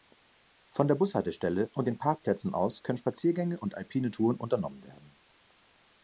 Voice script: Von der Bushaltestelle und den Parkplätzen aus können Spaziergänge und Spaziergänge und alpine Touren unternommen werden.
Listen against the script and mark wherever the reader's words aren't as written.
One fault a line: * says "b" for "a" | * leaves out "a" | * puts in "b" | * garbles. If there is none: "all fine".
* leaves out "Spaziergänge und"